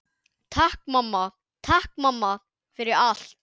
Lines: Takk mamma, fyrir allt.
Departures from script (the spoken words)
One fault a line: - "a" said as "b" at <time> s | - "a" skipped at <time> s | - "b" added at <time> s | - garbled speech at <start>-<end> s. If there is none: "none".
- "takk mamma" added at 1.7 s